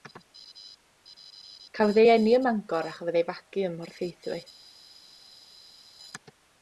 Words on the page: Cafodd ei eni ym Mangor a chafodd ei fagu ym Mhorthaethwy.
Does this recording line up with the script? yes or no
yes